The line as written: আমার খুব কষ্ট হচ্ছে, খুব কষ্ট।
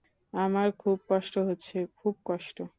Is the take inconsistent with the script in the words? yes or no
no